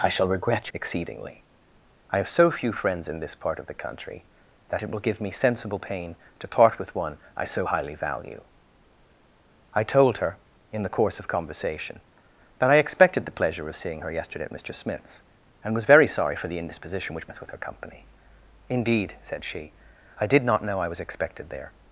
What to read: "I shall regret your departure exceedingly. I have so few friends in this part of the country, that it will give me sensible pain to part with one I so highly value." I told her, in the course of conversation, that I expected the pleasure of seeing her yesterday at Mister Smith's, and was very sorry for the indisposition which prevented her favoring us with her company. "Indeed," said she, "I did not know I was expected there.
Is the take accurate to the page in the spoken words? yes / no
no